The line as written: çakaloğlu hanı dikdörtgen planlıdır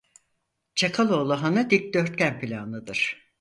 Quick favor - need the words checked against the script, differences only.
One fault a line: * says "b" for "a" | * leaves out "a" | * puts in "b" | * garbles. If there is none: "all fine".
all fine